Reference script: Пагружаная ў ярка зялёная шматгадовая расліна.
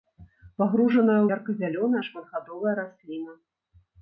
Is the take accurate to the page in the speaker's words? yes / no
yes